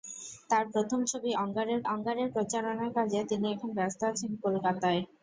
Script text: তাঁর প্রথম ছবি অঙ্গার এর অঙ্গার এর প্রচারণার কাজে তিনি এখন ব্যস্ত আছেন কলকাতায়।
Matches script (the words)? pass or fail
pass